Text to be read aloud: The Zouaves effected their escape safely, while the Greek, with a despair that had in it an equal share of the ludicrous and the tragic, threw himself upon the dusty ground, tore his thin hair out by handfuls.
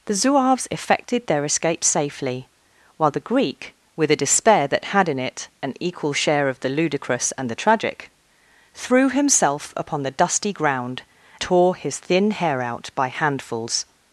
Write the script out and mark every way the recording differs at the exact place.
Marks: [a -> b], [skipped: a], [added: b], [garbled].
The Zouaves effected their escape safely, while the Greek, with a despair that had in it an equal share of the ludicrous and the tragic, threw himself upon the dusty ground, tore his thin hair out by handfuls.